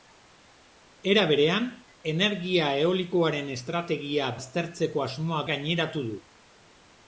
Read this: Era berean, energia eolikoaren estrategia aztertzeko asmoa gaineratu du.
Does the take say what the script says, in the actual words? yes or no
yes